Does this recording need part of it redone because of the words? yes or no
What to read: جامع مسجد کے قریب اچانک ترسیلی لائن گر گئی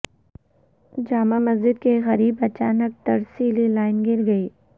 no